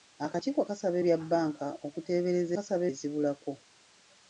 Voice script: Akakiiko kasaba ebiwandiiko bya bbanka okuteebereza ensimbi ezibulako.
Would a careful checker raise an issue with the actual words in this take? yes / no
yes